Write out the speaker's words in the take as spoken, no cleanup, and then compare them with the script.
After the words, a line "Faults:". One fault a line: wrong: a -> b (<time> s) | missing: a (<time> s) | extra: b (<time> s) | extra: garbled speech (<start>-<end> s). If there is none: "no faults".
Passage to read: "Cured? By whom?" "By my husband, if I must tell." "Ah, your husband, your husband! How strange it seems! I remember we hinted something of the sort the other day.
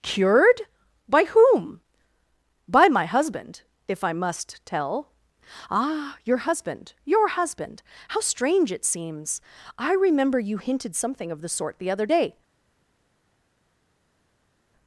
"Cured? By whom?" "By my husband, if I must tell." "Ah, your husband, your husband! How strange it seems! I remember you hinted something of the sort the other day.
Faults:
wrong: we -> you (10.4 s)